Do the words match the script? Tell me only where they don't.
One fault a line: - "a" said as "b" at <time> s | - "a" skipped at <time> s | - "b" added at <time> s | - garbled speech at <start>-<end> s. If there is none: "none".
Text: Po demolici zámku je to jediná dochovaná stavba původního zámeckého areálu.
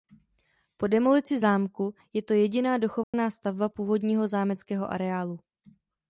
none